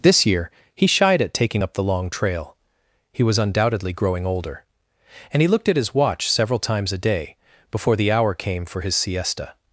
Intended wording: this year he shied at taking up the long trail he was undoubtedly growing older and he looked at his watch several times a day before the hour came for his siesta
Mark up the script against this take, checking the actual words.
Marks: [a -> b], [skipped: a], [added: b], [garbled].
this year he shied at taking up the long trail he was undoubtedly growing older and he looked at his watch several times a day before the hour came for his siesta